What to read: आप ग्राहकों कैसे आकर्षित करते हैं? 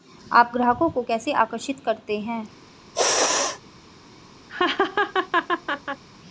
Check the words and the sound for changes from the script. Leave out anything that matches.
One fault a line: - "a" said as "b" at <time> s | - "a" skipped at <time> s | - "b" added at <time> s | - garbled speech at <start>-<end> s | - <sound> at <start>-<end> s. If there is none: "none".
- "को" added at 0.9 s
- sneeze at 2.9-3.6 s
- laugh at 4.5-6.0 s